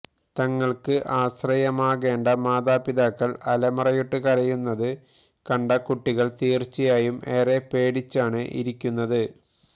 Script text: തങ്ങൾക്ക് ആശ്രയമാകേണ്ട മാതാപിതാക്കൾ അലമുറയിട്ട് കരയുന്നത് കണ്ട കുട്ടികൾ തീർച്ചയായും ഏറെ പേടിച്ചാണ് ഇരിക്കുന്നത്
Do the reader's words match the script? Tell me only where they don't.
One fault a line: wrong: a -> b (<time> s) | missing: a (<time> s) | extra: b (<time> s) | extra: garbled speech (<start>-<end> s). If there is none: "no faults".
no faults